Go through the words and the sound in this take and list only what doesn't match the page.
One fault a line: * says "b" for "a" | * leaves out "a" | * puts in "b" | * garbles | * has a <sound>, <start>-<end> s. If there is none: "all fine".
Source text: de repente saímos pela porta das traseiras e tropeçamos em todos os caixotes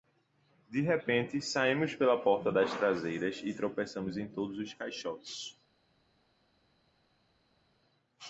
all fine